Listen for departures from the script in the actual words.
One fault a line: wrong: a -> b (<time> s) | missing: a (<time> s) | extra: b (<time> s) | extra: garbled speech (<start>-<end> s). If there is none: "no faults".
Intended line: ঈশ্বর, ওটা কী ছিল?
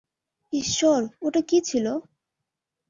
no faults